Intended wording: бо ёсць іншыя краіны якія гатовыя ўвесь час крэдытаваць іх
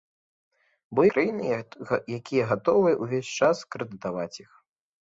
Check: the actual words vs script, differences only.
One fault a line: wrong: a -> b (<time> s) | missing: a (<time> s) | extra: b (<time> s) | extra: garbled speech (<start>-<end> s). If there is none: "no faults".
missing: ёсць іншыя (1.0 s)